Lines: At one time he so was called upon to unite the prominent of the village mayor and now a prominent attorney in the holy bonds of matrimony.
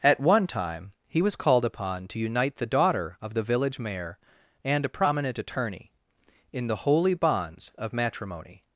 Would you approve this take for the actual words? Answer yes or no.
no